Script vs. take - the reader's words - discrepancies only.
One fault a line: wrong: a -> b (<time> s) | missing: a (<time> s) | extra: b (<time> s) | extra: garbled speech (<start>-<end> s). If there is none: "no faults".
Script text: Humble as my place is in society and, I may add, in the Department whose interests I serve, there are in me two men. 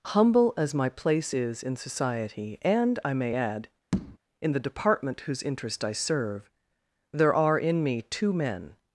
wrong: interests -> interest (5.4 s)